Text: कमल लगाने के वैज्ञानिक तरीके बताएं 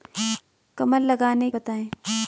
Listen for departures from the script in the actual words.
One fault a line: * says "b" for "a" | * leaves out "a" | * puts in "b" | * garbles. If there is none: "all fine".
* leaves out "के वैज्ञानिक तरीके"